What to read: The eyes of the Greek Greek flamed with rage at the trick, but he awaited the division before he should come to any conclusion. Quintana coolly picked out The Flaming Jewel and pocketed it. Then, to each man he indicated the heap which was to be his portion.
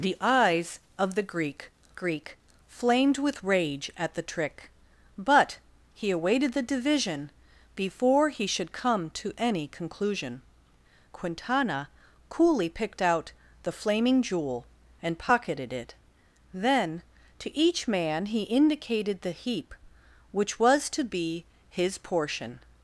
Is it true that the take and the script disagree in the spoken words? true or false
false